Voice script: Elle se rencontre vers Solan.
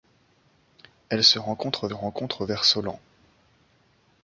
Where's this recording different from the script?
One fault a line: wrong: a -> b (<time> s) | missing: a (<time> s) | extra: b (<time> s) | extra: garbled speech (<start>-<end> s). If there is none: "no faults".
extra: rencontre (1.9 s)